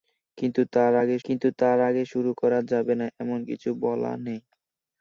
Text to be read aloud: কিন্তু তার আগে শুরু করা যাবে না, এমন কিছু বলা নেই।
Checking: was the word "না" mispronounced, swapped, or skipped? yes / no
no